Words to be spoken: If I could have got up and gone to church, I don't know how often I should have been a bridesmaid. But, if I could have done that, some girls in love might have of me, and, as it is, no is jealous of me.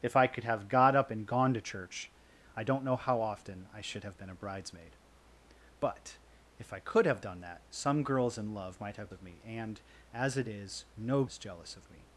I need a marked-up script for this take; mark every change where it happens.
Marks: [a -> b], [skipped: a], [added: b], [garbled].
If I could have got up and gone to church, I don't know how often I should have been a bridesmaid. But, if I could have done that, some girls in love might have of me, and, as it is, no is jealous of me.